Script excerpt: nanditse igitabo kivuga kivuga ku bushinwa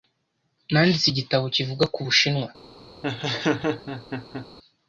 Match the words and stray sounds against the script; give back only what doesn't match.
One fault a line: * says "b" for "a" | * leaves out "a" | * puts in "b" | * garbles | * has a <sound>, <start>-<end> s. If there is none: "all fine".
* leaves out "kivuga"
* has a laugh, 3.0-4.5 s